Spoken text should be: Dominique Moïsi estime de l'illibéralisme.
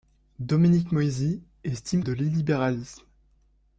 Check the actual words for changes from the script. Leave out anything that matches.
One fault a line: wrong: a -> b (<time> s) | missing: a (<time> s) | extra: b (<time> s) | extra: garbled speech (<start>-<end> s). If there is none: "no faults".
no faults